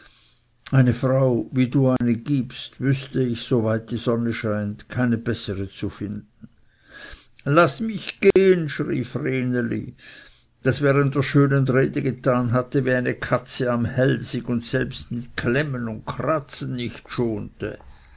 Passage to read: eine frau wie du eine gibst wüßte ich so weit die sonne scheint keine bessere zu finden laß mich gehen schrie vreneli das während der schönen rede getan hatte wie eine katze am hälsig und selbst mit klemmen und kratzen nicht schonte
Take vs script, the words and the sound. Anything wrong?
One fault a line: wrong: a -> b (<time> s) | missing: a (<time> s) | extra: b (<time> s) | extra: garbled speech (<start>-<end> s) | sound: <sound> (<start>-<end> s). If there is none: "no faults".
sound: dropout (2.0-2.0 s)
sound: dropout (8.3-8.4 s)